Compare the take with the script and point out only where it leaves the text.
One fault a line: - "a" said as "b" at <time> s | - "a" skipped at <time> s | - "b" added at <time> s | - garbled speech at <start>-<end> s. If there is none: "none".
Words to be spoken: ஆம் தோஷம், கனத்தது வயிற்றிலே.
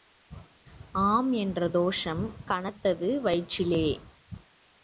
- "என்ற" added at 1.3 s